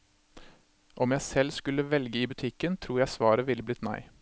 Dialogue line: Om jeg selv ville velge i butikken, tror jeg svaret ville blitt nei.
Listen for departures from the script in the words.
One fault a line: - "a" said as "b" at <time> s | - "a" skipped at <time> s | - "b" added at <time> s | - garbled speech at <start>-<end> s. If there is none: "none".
- "ville" said as "skulle" at 1.5 s